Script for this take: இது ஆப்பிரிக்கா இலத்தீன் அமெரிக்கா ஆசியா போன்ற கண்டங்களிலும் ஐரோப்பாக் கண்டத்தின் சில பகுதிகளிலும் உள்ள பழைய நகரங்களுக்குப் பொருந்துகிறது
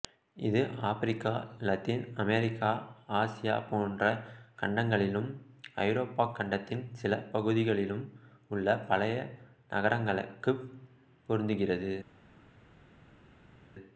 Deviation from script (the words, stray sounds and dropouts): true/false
false